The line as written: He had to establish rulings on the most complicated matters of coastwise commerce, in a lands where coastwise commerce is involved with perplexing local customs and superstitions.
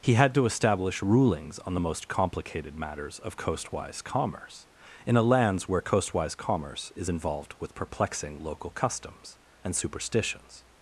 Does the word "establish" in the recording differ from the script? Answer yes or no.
no